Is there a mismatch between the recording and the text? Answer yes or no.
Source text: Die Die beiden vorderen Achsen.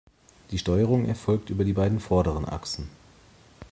yes